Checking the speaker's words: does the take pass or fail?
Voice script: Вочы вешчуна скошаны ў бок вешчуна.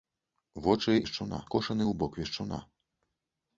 pass